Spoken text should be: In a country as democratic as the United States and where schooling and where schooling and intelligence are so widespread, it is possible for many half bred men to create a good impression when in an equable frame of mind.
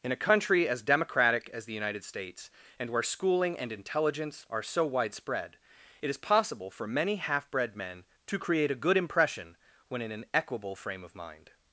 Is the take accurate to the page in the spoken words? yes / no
no